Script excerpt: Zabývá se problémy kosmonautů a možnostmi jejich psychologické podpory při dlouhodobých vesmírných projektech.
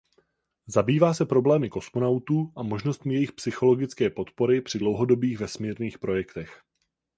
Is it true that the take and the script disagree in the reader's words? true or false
false